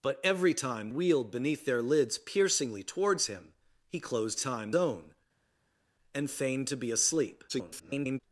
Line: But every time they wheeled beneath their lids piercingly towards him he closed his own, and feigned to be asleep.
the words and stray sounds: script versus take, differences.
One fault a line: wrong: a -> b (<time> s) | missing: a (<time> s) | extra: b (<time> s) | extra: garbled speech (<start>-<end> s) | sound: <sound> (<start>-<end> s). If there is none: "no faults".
missing: they (0.9 s)
wrong: his -> time (4.4 s)
extra: garbled speech (7.5-8.2 s)